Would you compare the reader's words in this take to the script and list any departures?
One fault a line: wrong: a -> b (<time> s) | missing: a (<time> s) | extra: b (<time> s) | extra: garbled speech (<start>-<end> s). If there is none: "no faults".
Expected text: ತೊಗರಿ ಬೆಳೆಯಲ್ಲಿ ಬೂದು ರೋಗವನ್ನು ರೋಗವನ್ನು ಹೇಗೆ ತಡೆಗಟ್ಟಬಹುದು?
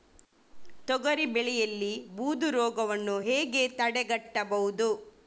missing: ರೋಗವನ್ನು (3.2 s)